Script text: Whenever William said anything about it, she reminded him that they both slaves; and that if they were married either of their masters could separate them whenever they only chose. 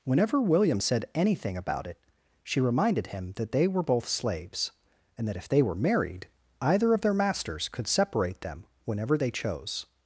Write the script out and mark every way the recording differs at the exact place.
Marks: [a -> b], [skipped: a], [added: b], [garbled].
Whenever William said anything about it, she reminded him that they [added: were] both slaves; and that if they were married either of their masters could separate them whenever they [skipped: only] chose.